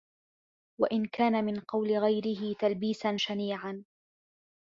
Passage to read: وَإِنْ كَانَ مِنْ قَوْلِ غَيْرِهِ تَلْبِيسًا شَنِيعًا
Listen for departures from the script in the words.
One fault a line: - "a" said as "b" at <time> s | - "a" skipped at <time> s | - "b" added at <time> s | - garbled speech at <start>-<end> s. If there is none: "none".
none